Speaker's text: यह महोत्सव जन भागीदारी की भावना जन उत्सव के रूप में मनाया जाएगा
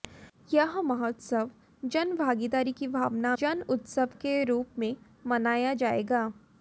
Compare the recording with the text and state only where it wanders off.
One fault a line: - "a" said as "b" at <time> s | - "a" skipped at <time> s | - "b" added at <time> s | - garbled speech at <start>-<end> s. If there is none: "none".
none